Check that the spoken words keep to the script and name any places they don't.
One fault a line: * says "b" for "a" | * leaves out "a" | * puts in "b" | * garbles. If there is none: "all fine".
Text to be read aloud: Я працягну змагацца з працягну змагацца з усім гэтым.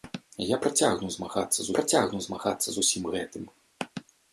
all fine